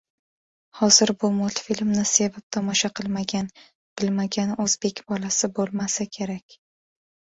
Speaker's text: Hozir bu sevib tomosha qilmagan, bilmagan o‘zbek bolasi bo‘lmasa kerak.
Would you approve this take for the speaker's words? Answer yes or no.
no